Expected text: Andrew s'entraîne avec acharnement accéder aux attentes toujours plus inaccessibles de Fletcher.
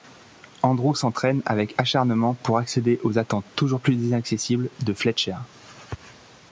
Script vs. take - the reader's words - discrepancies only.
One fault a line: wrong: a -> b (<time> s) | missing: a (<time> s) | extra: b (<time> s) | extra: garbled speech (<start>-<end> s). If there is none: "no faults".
extra: pour (2.3 s)